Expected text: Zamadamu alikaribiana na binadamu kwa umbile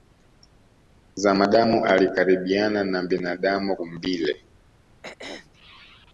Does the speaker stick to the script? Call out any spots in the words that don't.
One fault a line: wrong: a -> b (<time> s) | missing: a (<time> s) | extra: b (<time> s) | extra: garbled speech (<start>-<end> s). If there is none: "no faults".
missing: kwa (3.8 s)